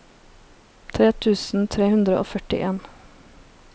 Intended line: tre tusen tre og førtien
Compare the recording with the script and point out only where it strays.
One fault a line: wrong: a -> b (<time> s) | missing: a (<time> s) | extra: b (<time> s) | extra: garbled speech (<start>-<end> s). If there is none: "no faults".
extra: hundre (1.9 s)